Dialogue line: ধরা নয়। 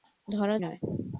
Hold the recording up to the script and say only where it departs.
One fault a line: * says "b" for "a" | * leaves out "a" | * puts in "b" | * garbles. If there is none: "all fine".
all fine